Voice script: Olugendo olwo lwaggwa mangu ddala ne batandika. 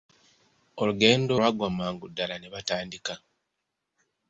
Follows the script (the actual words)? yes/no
no